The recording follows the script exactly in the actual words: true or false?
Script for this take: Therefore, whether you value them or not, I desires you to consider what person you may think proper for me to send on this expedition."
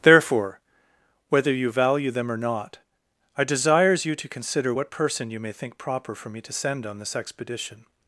true